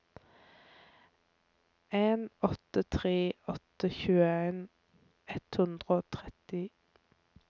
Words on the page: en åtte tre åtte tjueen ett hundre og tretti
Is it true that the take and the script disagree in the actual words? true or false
false